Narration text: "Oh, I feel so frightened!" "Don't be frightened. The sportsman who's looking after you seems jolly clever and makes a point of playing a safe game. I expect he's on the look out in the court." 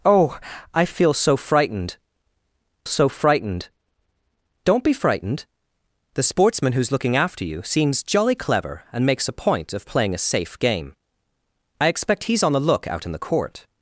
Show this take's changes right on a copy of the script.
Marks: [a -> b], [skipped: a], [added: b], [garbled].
"Oh, I feel so frightened!" [added: so frightened] "Don't be frightened. The sportsman who's looking after you seems jolly clever and makes a point of playing a safe game. I expect he's on the look out in the court."